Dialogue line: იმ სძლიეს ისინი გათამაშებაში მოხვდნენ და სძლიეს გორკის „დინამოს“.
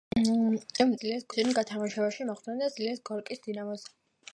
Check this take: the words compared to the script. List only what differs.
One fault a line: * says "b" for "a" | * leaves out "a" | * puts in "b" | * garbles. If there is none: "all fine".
all fine